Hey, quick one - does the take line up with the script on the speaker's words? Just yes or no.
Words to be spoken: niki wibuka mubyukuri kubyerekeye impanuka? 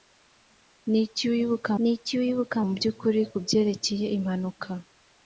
no